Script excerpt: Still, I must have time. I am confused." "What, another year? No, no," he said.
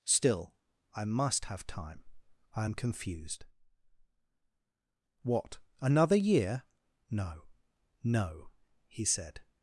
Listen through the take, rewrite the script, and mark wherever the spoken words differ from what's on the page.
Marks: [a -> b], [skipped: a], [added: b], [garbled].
Still, I must have time. I am confused." "What, another year? No, no," he said.